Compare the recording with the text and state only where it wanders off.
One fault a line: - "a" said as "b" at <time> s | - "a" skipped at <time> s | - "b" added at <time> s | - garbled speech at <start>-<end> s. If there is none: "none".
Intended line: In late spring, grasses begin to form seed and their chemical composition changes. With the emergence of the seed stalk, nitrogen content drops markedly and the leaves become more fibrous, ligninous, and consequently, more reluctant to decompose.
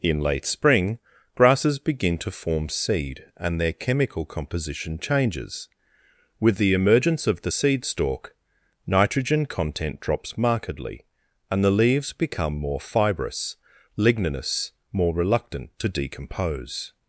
- "and consequently" skipped at 14.7 s